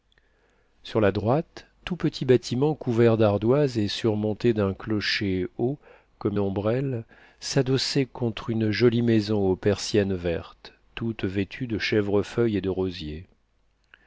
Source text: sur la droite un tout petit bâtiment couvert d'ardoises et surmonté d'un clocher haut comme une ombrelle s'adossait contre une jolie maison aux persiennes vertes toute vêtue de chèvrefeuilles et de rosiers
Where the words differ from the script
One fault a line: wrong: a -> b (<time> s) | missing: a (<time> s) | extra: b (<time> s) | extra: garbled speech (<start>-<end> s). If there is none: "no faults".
missing: un (1.7 s)
missing: une (6.4 s)